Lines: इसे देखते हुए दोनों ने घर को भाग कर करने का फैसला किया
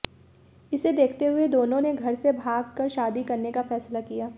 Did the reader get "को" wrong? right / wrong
wrong